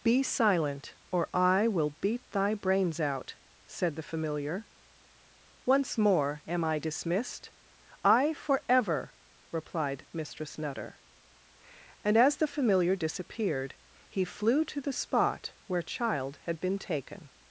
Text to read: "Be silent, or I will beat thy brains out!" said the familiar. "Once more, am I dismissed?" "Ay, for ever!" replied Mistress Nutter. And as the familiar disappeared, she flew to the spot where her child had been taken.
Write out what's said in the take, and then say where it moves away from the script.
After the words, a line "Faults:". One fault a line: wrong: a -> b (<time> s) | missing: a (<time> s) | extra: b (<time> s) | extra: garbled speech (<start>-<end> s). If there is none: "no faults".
"Be silent, or I will beat thy brains out!" said the familiar. "Once more, am I dismissed?" "Ay, for ever!" replied Mistress Nutter. And as the familiar disappeared, he flew to the spot where child had been taken.
Faults:
wrong: she -> he (14.1 s)
missing: her (15.8 s)